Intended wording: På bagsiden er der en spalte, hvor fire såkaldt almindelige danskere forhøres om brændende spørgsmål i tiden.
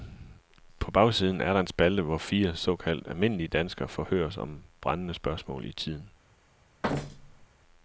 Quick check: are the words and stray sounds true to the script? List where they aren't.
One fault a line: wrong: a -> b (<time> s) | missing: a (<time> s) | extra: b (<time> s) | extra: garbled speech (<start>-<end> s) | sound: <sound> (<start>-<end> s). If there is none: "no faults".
sound: thud (6.8-7.5 s)